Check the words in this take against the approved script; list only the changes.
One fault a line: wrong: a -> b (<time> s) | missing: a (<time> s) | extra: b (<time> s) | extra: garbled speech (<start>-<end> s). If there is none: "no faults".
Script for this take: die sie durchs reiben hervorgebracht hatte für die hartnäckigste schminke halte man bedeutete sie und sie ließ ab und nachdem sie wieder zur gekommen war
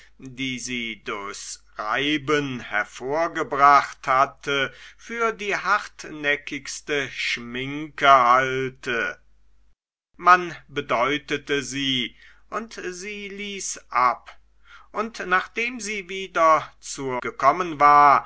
no faults